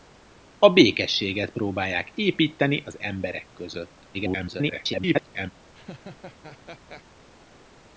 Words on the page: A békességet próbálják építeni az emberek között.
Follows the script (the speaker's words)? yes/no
no